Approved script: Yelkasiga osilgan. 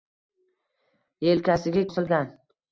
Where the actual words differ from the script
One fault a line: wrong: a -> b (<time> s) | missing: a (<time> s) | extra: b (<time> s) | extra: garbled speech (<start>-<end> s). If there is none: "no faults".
no faults